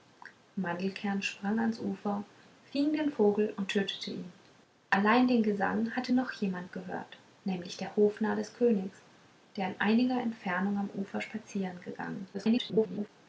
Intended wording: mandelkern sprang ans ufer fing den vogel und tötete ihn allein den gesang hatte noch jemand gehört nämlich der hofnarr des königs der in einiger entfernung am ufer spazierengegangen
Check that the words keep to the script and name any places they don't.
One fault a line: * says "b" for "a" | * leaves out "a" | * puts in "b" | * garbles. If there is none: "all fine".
* garbles